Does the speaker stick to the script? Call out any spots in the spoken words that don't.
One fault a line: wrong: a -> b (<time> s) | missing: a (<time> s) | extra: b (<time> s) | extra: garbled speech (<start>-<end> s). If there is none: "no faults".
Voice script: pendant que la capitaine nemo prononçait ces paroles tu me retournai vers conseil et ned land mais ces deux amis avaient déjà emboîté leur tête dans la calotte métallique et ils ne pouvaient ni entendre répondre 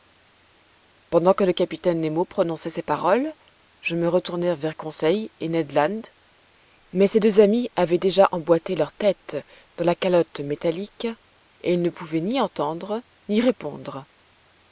wrong: la -> le (1.4 s)
wrong: tu -> je (3.8 s)
extra: ni (13.3 s)